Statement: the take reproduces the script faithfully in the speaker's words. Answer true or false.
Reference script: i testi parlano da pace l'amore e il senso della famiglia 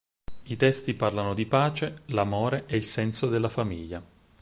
false